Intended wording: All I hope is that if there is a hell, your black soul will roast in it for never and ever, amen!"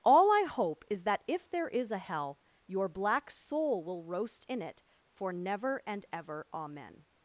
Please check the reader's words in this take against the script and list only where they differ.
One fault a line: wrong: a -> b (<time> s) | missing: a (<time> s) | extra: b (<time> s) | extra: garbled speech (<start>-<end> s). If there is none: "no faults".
no faults